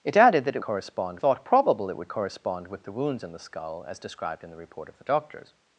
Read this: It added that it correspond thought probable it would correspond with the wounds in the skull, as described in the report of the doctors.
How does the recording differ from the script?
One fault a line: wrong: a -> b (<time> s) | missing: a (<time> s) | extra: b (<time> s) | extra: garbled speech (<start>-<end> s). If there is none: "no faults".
no faults